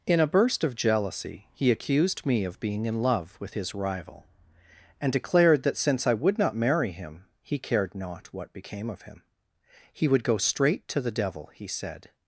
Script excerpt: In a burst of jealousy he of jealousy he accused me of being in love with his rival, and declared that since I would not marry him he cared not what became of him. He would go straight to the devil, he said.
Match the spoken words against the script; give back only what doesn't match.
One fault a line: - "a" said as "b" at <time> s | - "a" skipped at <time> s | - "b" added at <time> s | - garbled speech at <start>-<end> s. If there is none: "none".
- "of jealousy he" skipped at 1.7 s